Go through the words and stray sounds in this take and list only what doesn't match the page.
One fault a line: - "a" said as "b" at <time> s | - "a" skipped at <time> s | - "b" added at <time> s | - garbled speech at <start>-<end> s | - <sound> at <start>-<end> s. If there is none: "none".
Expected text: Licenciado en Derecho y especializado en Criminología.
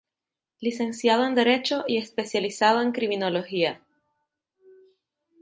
none